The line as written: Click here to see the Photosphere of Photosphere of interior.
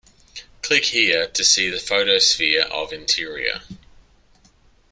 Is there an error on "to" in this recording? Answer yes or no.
no